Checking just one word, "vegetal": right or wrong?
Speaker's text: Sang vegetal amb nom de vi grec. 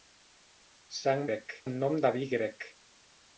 wrong